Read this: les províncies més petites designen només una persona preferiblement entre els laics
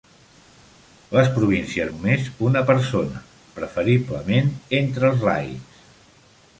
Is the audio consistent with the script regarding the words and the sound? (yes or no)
no